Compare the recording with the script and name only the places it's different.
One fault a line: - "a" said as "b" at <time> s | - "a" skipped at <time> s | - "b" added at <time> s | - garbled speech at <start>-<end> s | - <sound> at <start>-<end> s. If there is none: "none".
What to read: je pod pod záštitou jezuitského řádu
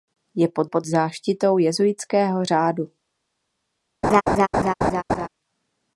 - laugh at 4.0-5.3 s